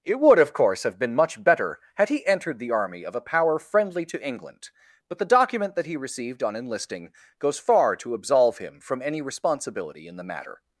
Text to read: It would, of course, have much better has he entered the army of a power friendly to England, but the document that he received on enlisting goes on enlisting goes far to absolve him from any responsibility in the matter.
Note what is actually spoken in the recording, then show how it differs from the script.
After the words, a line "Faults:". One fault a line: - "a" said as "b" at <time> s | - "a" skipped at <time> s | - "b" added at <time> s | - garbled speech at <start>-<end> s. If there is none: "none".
It would, of course, have been much better had he entered the army of a power friendly to England, but the document that he received on enlisting goes far to absolve him from any responsibility in the matter.
Faults:
- "been" added at 1.0 s
- "has" said as "had" at 1.9 s
- "on enlisting goes" skipped at 7.6 s